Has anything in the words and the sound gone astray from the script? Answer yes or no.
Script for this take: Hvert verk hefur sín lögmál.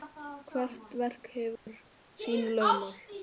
yes